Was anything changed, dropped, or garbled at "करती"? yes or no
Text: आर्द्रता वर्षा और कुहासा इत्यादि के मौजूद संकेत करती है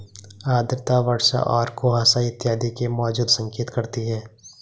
no